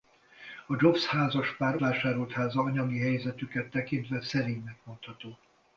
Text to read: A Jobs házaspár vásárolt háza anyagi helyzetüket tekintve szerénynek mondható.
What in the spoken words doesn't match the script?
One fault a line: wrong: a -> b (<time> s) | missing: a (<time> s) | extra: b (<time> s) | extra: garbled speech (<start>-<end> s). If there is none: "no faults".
no faults